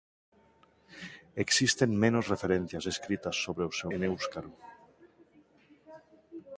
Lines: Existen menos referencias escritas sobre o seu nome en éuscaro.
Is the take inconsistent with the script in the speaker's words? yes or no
yes